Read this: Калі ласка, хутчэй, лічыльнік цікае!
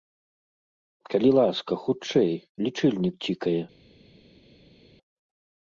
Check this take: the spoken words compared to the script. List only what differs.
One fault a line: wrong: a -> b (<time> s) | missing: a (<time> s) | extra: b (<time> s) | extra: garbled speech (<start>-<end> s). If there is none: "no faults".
no faults